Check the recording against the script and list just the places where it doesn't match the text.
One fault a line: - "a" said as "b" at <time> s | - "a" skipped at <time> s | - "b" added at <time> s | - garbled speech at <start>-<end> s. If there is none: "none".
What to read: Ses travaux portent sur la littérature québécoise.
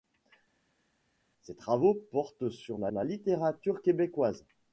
- "la" added at 2.9 s